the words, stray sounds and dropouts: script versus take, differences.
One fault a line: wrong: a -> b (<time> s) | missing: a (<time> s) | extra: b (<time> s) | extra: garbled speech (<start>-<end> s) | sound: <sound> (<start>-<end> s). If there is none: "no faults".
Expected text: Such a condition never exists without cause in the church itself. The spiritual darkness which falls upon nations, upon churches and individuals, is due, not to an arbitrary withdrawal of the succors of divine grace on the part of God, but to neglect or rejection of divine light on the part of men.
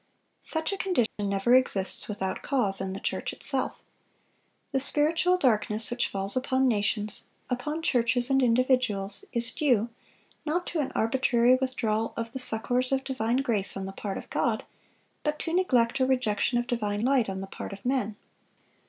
sound: dropout (1.1-1.2 s)